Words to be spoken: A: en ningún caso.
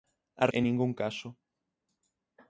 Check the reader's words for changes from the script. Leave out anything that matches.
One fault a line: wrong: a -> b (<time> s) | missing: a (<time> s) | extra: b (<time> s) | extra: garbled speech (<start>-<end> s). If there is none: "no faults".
no faults